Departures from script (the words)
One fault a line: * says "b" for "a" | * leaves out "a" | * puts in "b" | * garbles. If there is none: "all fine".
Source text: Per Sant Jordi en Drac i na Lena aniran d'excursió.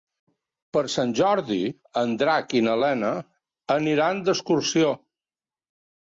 all fine